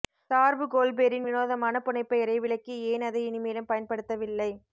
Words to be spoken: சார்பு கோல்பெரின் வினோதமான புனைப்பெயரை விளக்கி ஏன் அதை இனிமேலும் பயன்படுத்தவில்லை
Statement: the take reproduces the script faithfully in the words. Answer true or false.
true